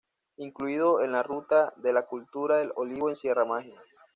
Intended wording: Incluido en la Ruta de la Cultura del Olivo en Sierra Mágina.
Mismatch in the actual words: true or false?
false